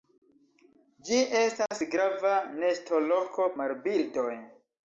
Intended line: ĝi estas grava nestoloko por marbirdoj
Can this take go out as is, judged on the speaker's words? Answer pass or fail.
fail